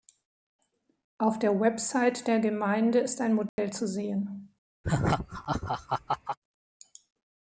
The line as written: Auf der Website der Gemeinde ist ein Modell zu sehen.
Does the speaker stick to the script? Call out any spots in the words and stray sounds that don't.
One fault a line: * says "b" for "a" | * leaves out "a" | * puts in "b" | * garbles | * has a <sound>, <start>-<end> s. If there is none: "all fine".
* has a dropout, 3.5-3.6 s
* has a laugh, 4.8-6.4 s